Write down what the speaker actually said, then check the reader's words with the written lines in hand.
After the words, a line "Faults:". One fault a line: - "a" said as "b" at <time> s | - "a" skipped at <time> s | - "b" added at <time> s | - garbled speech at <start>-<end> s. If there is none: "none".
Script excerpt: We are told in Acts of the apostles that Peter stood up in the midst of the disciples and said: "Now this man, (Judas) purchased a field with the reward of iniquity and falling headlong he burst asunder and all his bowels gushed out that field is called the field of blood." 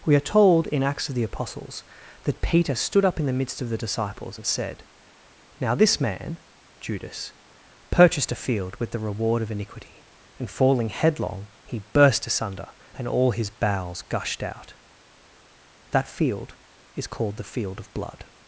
We are told in Acts of the apostles that Peter stood up in the midst of the disciples and said: "Now this man, (Judas) purchased a field with the reward of iniquity and falling headlong he burst asunder and all his bowels gushed out that field is called the field of blood."
Faults:
none